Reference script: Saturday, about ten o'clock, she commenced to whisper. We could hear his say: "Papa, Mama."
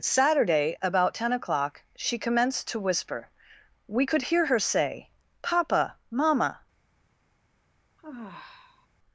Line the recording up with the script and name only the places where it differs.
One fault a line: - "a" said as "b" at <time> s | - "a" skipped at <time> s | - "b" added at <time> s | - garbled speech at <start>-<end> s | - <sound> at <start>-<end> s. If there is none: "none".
- "his" said as "her" at 4.5 s
- sigh at 8.0-8.9 s